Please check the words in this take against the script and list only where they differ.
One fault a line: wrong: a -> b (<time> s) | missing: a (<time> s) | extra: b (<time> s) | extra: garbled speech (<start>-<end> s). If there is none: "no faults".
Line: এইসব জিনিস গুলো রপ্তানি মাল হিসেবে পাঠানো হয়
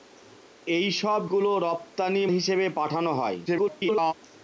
missing: জিনিস (1.2 s)
missing: মাল (2.2 s)
extra: garbled speech (3.5-4.1 s)